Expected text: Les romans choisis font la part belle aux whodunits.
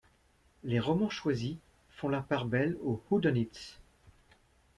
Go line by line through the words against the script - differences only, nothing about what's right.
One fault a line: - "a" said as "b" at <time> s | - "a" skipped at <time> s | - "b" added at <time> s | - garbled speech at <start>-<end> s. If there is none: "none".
none